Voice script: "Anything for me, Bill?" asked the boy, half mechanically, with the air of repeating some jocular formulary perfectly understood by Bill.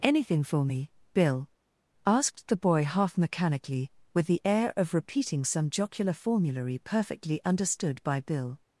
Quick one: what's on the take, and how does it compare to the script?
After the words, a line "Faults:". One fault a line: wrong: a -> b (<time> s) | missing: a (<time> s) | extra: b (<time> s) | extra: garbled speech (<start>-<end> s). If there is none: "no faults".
"Anything for me, Bill?" asked the boy, half mechanically, with the air of repeating some jocular formulary perfectly understood by Bill.
Faults:
no faults